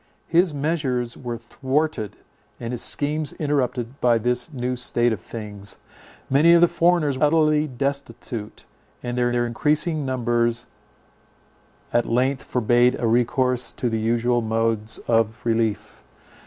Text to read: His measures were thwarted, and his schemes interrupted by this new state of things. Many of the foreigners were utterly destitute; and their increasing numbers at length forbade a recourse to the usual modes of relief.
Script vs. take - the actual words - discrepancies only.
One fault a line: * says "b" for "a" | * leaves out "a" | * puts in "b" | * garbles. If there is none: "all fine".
* leaves out "were"
* puts in "their"